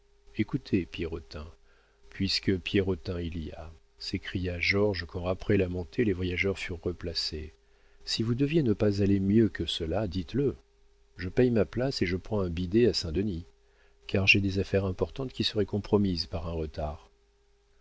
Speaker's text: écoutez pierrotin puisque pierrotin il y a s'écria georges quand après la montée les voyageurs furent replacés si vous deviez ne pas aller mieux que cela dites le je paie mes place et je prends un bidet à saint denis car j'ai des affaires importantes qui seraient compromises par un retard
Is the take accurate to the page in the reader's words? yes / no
no